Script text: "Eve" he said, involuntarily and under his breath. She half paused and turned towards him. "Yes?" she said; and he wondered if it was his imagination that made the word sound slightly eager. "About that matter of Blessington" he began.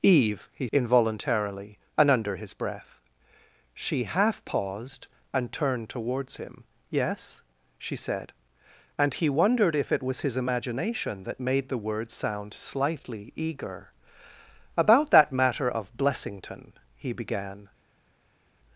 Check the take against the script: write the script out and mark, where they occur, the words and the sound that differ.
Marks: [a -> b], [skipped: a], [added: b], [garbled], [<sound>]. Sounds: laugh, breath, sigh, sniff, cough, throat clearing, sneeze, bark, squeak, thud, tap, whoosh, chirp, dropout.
"Eve" he [skipped: said,] involuntarily and under his breath. She half paused and turned towards him. "Yes?" she said; and he wondered if it was his imagination that made the word sound slightly eager. "About that matter of Blessington" he began.